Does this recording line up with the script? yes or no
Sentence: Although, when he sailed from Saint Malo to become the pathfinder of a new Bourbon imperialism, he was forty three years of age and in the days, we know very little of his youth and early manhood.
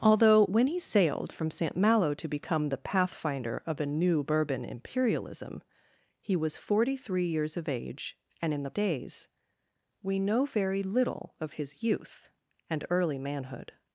yes